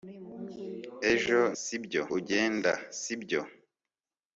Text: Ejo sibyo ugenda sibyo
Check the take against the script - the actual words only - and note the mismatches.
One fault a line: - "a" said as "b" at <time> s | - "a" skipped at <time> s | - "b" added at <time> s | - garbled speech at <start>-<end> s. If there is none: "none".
none